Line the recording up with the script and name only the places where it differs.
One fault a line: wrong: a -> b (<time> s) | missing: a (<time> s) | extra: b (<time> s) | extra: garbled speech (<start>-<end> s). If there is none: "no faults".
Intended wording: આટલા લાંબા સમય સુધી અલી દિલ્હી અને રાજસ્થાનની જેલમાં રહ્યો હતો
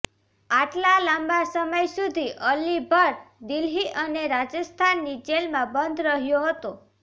extra: ભટ્ટ (2.9 s)
extra: બંધ (5.8 s)